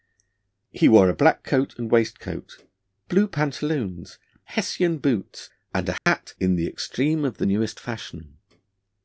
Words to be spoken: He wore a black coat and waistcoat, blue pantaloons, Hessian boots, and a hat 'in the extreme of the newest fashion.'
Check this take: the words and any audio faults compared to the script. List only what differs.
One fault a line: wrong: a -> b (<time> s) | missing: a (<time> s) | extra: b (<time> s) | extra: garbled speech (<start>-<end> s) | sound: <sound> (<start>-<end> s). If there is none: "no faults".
sound: dropout (6.0-6.1 s)